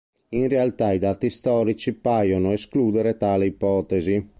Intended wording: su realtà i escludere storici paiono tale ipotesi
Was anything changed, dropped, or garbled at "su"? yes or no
yes